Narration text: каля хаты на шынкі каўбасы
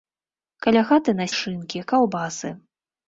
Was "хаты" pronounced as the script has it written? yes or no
yes